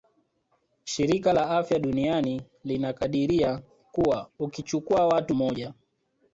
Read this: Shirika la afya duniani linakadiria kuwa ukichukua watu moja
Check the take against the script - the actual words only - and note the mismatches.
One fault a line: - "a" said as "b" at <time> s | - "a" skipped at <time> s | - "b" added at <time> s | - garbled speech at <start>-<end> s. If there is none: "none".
none